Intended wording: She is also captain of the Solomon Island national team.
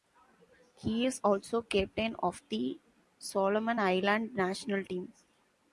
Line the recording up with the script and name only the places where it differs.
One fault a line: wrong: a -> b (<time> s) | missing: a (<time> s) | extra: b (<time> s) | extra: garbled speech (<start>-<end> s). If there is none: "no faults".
wrong: She -> He (0.7 s)